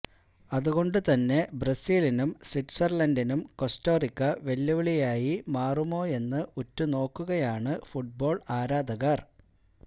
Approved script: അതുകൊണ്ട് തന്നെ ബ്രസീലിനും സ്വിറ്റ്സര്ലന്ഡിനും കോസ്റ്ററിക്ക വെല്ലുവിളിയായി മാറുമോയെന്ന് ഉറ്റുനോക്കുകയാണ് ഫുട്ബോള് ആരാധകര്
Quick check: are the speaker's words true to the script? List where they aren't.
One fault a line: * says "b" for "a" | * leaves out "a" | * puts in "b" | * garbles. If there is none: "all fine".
all fine